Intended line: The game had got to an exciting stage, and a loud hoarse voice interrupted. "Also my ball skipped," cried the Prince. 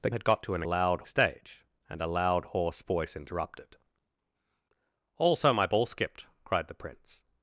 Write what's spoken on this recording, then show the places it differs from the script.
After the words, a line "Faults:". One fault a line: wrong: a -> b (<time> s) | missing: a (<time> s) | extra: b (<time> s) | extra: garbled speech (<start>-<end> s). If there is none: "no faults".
The had got to an loud stage, and a loud hoarse voice interrupted. "Also my ball skipped," cried the Prince.
Faults:
missing: game (0.1 s)
wrong: exciting -> loud (0.6 s)